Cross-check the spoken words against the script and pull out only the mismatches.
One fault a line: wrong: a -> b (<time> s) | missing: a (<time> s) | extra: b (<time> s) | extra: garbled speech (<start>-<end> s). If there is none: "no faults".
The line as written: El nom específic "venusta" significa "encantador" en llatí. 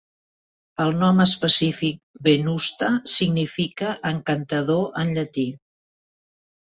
no faults